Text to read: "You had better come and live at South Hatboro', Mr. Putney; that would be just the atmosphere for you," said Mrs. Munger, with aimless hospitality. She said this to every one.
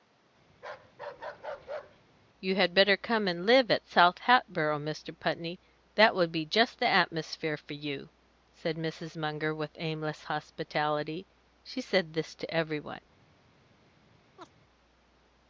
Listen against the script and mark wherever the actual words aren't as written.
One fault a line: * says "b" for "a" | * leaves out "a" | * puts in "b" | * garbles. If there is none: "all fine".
all fine